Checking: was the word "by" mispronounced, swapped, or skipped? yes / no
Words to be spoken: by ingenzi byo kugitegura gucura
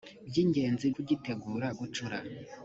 no